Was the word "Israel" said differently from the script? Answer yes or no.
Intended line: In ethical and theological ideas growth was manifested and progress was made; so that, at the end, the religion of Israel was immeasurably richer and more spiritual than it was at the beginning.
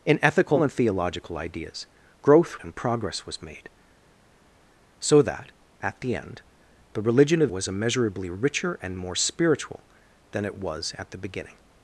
yes